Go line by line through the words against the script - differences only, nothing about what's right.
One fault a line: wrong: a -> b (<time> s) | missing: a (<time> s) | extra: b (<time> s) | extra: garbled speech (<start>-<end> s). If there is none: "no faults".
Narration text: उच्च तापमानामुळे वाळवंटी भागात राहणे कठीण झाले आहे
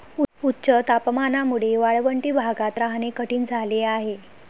no faults